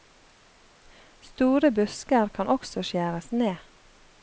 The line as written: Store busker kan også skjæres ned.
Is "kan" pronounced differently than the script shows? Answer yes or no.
no